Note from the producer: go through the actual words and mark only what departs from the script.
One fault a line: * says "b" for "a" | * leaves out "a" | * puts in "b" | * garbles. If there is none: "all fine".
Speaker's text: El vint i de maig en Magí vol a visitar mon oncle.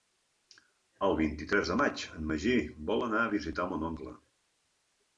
* puts in "tres"
* puts in "anar"